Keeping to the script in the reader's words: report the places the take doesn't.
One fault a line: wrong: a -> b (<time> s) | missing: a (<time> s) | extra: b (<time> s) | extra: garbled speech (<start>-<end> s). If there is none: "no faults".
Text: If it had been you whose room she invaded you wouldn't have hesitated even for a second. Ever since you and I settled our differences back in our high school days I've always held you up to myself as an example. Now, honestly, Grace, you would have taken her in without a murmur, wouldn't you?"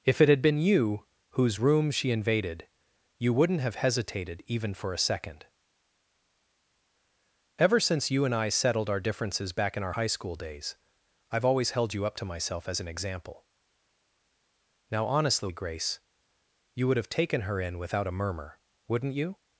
no faults